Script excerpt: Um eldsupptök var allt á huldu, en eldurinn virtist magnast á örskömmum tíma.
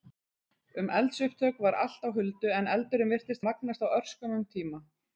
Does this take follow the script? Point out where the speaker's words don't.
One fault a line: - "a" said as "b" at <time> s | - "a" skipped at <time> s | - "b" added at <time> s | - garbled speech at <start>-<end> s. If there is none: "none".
none